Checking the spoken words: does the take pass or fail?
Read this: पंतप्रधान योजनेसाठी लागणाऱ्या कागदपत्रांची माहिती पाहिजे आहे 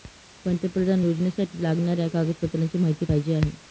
pass